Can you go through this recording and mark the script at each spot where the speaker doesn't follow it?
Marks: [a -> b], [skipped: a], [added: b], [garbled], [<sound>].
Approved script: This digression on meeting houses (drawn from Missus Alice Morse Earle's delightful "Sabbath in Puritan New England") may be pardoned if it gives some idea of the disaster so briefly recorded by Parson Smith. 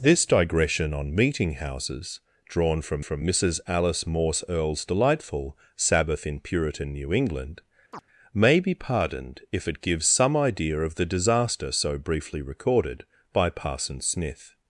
This digression on meeting houses (drawn from [added: from] Missus Alice Morse Earle's delightful "Sabbath in Puritan New England") [chirp] may be pardoned if it gives some idea of the disaster so briefly recorded by Parson Smith.